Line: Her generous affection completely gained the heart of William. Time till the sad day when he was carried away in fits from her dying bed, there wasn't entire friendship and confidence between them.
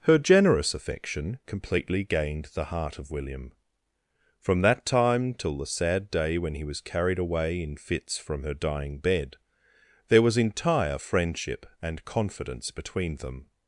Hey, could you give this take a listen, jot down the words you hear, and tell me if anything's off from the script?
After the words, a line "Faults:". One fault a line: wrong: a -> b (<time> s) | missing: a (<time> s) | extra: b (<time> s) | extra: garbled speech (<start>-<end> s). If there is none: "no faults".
Her generous affection completely gained the heart of William. From that time till the sad day when he was carried away in fits from her dying bed, there was entire friendship and confidence between them.
Faults:
extra: From that (4.4 s)
wrong: wasn't -> was (10.2 s)